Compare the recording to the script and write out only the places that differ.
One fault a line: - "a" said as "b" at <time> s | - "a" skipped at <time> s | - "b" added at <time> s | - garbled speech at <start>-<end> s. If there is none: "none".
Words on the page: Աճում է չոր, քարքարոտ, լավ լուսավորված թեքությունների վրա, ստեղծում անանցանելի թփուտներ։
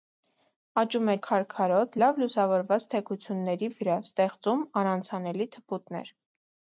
- "չոր" skipped at 1.1 s